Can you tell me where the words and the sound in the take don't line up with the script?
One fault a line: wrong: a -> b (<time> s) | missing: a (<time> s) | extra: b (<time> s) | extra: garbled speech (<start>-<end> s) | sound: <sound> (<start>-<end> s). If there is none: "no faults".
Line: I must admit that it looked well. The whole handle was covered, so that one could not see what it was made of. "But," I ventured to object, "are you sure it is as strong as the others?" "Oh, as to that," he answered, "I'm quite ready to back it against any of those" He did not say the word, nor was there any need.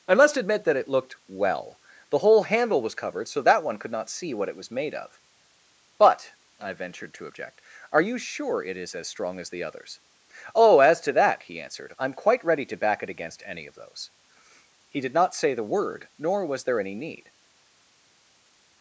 no faults